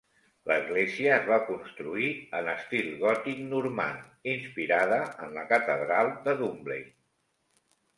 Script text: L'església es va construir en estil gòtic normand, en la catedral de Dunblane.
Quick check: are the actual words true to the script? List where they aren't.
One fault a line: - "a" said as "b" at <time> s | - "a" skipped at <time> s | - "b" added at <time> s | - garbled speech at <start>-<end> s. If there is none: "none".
- "inspirada" added at 4.4 s